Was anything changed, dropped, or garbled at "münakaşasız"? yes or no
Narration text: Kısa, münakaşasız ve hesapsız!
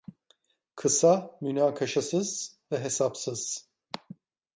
no